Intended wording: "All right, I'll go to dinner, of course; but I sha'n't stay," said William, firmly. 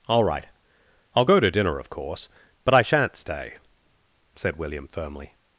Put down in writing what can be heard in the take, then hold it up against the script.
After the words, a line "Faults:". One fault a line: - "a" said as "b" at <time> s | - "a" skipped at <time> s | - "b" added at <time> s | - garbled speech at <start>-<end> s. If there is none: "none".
"All right, I'll go to dinner, of course; but I sha'n't stay," said William, firmly.
Faults:
none